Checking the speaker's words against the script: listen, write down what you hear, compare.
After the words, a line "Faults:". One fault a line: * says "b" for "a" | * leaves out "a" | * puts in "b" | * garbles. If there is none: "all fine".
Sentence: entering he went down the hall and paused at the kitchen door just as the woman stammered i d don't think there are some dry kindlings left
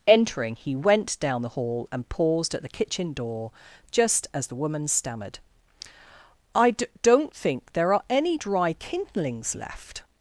entering he went down the hall and paused at the kitchen door just as the woman stammered i d don't think there are any dry kindlings left
Faults:
* says "any" for "some"